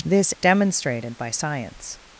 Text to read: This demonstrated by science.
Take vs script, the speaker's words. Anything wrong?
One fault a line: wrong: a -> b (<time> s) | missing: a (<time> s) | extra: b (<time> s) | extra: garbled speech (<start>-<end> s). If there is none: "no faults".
no faults